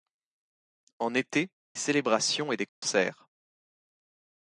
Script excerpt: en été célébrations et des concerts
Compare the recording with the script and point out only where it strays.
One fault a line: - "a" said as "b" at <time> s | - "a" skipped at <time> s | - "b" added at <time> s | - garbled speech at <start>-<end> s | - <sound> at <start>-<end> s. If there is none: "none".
- dropout at 2.7-2.8 s